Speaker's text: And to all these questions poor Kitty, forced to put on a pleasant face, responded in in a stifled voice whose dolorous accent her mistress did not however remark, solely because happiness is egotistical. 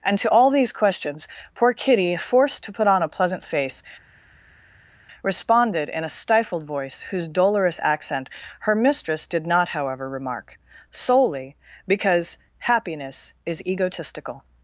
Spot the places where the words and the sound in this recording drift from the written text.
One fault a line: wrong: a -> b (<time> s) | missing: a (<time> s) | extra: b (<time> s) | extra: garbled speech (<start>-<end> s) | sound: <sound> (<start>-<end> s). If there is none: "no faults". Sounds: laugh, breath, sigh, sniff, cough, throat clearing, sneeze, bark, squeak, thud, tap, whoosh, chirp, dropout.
missing: in (6.0 s)